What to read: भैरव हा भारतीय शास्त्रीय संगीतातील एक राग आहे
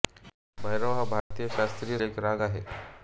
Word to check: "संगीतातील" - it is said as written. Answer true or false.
false